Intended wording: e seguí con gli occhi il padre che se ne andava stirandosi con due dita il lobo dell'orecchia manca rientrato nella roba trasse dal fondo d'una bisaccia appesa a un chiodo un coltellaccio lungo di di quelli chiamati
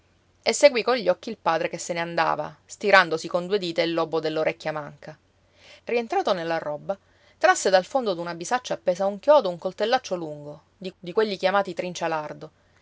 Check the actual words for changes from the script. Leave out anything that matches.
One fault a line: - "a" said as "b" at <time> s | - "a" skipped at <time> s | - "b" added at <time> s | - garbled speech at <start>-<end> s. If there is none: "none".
none